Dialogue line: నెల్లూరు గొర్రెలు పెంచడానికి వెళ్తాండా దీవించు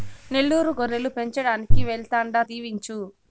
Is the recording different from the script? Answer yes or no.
no